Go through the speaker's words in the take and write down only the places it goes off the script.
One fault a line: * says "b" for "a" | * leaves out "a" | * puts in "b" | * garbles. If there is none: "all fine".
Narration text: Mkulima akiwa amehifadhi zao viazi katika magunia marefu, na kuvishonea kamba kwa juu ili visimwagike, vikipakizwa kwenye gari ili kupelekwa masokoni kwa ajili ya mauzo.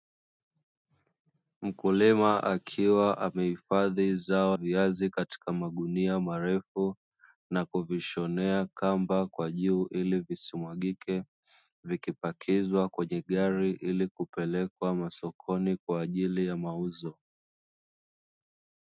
all fine